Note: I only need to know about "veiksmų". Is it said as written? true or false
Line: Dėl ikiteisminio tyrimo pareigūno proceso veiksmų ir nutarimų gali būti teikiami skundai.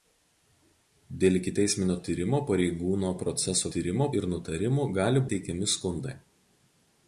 false